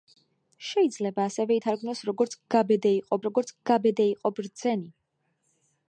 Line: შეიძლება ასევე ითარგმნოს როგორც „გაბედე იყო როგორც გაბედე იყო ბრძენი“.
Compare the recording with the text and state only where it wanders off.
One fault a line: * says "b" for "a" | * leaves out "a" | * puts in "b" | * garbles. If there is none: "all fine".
all fine